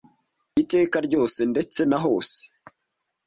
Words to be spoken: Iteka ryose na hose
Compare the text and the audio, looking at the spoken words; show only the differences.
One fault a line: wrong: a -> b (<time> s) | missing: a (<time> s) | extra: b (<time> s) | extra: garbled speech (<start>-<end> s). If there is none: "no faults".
extra: ndetse (1.5 s)